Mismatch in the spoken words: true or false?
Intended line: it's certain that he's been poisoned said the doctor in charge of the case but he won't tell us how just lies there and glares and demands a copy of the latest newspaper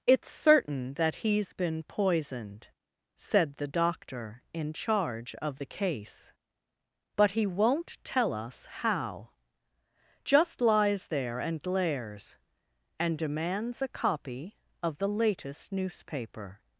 false